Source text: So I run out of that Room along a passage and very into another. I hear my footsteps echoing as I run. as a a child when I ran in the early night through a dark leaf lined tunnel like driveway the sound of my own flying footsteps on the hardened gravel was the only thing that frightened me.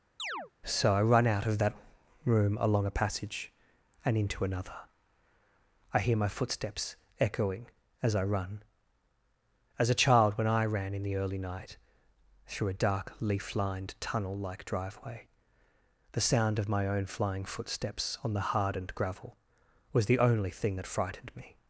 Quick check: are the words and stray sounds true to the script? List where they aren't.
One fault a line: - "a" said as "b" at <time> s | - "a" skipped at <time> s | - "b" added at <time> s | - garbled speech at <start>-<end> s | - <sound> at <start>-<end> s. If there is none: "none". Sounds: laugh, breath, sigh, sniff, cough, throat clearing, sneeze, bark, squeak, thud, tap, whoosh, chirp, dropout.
- chirp at 0.2-0.5 s
- "very" skipped at 4.2 s
- "a" skipped at 10.0 s